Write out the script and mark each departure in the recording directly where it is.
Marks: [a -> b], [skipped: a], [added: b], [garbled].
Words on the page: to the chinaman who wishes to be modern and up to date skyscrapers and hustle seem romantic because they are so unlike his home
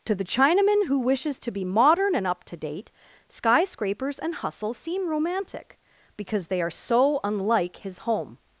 to the chinaman who wishes to be modern and up to date skyscrapers and hustle seem romantic because they are so unlike his home